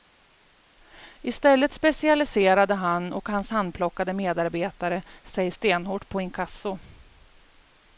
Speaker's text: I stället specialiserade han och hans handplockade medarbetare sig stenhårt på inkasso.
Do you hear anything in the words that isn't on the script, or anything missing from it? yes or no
no